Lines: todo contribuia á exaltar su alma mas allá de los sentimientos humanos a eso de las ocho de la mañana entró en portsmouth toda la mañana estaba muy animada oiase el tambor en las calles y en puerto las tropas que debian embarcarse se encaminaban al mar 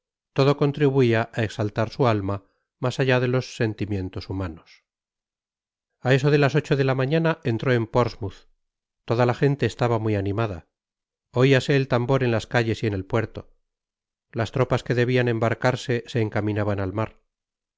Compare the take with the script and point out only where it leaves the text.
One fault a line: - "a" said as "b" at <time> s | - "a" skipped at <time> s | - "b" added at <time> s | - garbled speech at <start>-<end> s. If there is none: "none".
- "mañana" said as "gente" at 9.4 s
- "el" added at 12.9 s